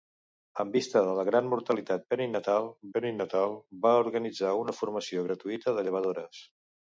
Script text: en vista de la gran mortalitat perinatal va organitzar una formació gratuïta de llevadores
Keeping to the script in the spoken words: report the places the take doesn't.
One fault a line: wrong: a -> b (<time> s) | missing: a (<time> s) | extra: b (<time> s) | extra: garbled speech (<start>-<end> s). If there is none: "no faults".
extra: perinatal (3.0 s)